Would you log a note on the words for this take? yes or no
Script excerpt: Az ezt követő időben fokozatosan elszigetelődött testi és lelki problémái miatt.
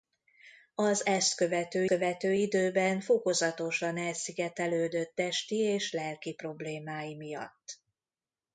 yes